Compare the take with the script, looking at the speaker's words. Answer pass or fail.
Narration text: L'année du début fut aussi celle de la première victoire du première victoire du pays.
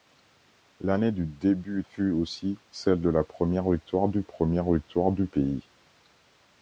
pass